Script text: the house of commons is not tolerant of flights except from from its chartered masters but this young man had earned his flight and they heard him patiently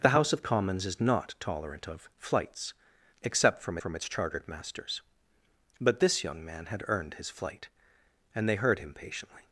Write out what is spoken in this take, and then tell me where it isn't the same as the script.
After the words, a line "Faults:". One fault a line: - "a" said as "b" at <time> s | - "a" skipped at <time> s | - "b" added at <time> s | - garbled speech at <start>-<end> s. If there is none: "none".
the house of commons is not tolerant of flights except from from its chartered masters but this young man had earned his flight and they heard him patiently
Faults:
none